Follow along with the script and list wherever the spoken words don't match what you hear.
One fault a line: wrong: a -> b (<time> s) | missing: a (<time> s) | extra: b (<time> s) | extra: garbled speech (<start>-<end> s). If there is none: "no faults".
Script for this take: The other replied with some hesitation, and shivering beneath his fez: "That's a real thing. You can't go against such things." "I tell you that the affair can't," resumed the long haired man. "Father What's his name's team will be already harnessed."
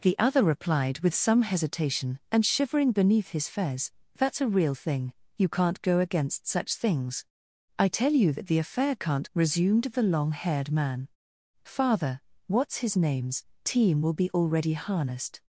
no faults